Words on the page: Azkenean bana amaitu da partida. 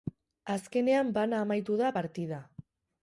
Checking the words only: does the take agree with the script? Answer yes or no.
yes